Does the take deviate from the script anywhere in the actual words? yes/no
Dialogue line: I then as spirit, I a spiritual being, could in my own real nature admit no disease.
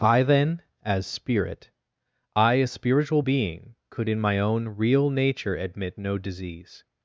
no